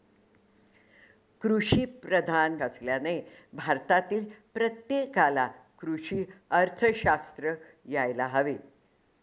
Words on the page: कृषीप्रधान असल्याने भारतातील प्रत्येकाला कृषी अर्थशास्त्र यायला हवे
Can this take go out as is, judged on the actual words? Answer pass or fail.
pass